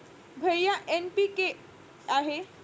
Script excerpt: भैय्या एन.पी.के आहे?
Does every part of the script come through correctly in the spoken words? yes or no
yes